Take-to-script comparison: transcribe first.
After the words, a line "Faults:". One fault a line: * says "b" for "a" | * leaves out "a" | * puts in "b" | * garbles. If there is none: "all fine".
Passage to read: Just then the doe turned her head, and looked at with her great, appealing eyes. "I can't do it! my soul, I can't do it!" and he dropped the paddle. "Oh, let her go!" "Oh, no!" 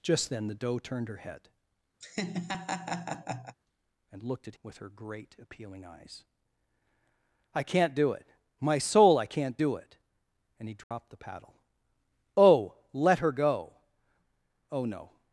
Just then the doe turned her head, and looked at with her great, appealing eyes. "I can't do it! my soul, I can't do it!" and he dropped the paddle. "Oh, let her go!" "Oh, no!"
Faults:
all fine